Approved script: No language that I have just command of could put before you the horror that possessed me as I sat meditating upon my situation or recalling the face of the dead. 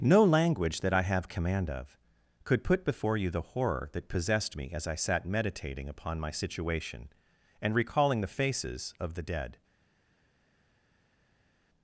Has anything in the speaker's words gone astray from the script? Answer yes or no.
yes